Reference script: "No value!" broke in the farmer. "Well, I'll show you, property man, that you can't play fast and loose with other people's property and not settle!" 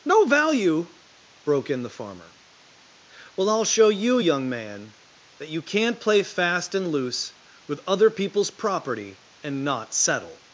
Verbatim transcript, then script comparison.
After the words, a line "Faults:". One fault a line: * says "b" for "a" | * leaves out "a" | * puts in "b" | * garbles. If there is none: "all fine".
"No value!" broke in the farmer. "Well, I'll show you, young man, that you can't play fast and loose with other people's property and not settle!"
Faults:
* says "young" for "property"